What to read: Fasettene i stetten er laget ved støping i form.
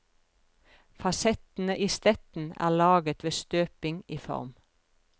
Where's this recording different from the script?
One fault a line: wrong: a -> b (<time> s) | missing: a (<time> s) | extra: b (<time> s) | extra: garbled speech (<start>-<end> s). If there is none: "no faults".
no faults